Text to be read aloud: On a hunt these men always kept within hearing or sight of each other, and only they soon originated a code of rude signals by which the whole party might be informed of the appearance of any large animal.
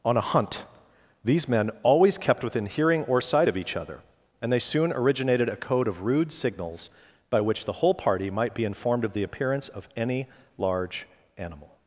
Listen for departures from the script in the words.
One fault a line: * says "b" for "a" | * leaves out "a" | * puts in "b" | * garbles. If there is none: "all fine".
* leaves out "only"